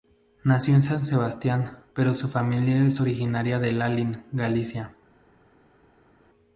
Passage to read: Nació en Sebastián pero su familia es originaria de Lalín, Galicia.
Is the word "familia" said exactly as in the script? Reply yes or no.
yes